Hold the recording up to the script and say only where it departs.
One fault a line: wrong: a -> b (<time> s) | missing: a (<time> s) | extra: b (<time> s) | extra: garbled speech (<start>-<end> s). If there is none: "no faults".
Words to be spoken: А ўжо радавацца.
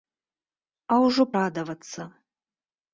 no faults